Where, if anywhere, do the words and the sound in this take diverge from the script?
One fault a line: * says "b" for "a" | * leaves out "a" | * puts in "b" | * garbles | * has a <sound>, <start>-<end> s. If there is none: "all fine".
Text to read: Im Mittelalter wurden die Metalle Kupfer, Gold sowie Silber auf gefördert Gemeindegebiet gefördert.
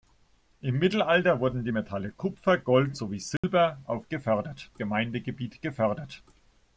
* has a dropout, 3.4-3.4 s